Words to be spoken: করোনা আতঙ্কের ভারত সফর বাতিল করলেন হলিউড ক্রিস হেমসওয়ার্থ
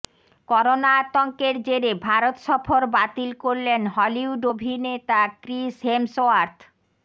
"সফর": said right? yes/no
yes